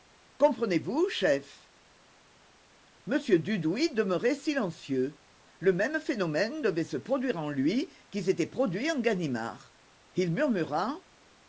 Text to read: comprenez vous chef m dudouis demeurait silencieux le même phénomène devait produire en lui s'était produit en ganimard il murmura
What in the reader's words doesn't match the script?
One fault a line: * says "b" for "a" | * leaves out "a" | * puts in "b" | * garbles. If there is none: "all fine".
* puts in "se"
* puts in "qui"